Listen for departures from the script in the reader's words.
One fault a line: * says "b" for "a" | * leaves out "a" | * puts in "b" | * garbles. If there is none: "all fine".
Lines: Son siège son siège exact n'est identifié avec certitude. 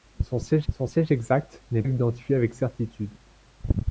all fine